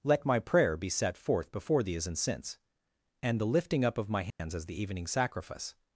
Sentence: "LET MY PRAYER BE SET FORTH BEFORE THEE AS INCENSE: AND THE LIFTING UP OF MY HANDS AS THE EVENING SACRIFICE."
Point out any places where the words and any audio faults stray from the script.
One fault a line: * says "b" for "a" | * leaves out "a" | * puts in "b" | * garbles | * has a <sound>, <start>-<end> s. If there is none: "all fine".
* has a dropout, 4.3-4.4 s